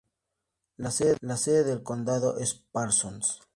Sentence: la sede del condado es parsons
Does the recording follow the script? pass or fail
pass